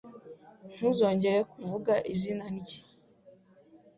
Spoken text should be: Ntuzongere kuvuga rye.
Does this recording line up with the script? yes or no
no